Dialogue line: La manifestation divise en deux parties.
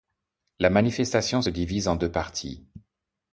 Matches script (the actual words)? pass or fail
pass